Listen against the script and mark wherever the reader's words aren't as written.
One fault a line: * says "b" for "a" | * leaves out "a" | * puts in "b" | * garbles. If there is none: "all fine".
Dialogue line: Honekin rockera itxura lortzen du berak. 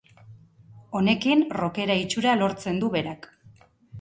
all fine